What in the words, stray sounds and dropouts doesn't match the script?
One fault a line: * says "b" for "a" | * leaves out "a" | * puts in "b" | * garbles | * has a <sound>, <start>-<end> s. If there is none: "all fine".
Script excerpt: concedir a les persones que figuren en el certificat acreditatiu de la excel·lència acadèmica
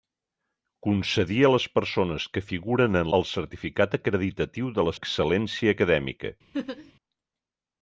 * has a laugh, 6.5-6.9 s